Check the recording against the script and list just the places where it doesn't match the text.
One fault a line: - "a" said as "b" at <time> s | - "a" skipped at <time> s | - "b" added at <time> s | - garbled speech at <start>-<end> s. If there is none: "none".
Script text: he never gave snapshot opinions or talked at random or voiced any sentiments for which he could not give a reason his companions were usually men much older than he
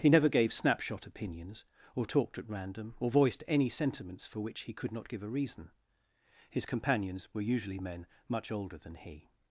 none